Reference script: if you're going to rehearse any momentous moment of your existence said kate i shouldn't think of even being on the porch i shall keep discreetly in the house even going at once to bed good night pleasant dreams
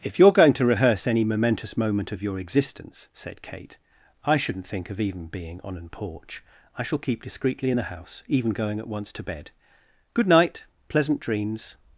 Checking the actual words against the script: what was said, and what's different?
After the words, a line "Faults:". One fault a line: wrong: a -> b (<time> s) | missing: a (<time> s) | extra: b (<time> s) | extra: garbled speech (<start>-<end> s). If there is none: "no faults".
if you're going to rehearse any momentous moment of your existence said kate i shouldn't think of even being on an porch i shall keep discreetly in the house even going at once to bed good night pleasant dreams
Faults:
wrong: the -> an (5.8 s)